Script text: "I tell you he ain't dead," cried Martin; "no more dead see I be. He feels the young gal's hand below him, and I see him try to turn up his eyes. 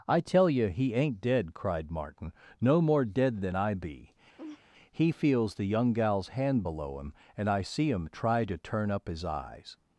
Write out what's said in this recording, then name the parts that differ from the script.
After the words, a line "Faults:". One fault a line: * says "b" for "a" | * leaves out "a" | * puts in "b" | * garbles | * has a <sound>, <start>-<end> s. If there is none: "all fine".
"I tell you he ain't dead," cried Martin; "no more dead than I be. He feels the young gal's hand below him, and I see him try to turn up his eyes.
Faults:
* says "than" for "see"
* has a laugh, 4.4-4.6 s